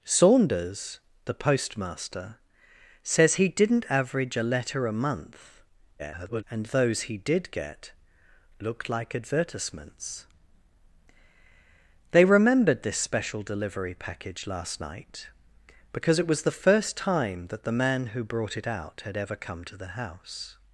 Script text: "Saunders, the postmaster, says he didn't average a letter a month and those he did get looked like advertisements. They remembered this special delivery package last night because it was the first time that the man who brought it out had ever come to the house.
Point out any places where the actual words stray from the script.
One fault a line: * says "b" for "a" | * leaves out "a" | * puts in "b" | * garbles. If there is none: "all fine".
* garbles